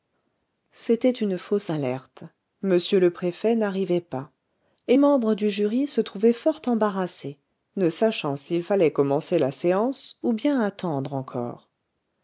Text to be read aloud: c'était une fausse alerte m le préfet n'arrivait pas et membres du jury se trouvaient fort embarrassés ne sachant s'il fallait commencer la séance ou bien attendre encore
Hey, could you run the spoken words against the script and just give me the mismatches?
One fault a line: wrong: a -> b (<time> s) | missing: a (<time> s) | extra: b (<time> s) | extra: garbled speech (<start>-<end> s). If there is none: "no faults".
no faults